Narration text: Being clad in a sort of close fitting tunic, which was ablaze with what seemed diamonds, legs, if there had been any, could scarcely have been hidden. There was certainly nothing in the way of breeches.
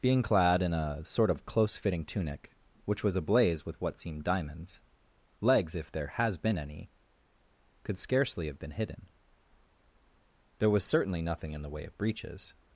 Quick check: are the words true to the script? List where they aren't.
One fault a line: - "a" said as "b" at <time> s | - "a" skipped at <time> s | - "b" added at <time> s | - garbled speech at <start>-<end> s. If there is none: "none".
- "had" said as "has" at 6.1 s